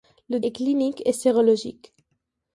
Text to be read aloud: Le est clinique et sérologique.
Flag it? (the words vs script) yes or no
no